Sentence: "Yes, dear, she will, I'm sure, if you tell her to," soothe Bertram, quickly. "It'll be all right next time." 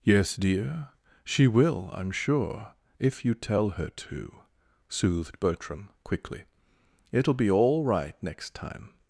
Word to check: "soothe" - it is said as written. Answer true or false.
false